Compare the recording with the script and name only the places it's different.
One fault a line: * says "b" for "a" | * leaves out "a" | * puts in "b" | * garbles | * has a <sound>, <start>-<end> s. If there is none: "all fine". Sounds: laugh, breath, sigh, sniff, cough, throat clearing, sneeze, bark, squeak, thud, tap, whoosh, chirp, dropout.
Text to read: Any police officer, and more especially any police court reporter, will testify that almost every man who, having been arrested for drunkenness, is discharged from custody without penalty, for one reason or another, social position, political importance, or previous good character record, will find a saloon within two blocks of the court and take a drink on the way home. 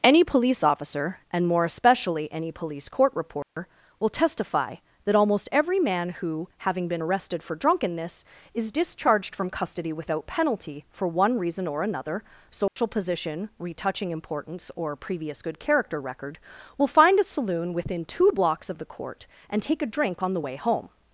* has a dropout, 3.4-3.6 s
* has a dropout, 12.7-12.8 s
* says "retouching" for "political"